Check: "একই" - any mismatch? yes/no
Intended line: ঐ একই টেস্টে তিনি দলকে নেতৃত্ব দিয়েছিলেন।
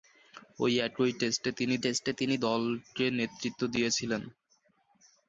no